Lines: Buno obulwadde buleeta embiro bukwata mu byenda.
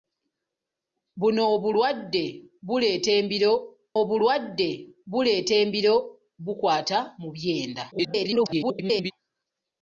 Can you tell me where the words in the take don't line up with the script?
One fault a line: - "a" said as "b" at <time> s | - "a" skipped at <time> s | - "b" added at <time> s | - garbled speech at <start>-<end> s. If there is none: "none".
- "obulwadde buleeta embiro" added at 4.0 s
- garbled speech at 7.9-9.1 s